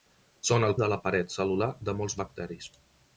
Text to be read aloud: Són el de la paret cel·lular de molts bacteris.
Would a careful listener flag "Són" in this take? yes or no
no